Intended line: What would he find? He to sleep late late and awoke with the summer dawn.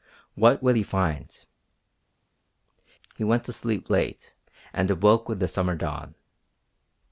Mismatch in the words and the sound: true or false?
true